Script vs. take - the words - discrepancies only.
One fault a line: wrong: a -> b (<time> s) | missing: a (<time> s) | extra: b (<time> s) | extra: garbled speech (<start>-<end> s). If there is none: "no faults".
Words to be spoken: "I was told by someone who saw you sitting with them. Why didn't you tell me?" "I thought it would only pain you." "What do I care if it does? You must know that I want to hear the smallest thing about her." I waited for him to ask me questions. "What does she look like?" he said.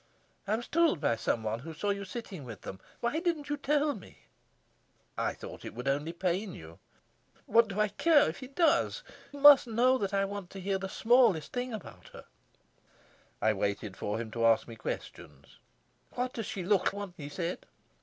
missing: You (9.0 s)
wrong: like -> want (16.9 s)